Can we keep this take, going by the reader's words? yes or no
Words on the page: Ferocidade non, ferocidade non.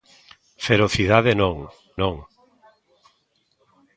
no